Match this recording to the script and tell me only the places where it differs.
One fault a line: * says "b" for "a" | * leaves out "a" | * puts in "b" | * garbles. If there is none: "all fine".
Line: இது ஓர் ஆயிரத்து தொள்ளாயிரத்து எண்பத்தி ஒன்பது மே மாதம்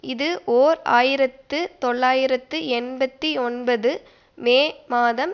all fine